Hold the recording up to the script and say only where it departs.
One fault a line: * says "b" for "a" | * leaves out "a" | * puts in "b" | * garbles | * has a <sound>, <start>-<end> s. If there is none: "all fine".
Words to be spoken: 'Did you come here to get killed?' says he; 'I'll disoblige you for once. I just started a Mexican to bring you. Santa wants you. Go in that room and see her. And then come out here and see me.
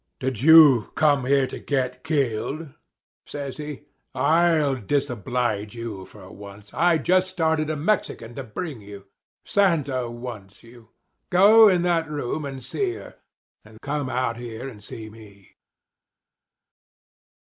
* leaves out "then"